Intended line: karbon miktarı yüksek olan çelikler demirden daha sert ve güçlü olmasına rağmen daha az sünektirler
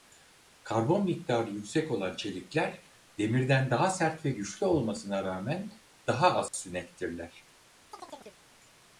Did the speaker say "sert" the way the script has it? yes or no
yes